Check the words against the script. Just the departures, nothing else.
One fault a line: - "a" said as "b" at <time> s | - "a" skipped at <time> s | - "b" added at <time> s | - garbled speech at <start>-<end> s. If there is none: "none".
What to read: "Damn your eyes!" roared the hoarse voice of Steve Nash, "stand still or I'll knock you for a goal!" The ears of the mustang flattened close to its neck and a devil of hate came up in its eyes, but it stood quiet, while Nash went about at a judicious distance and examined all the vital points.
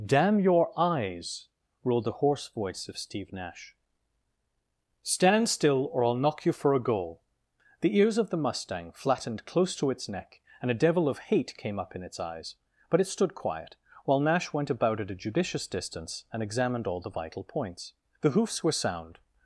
- "The hoofs were sound" added at 18.2 s